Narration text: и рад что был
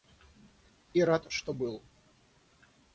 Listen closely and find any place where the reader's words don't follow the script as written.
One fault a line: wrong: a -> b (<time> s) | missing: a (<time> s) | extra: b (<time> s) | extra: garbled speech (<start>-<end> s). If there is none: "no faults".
no faults